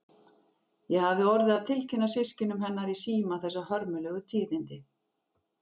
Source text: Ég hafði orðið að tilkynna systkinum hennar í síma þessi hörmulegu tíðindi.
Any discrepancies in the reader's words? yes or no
no